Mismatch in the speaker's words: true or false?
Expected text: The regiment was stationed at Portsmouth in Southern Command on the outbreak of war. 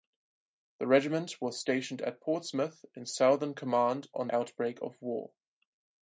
true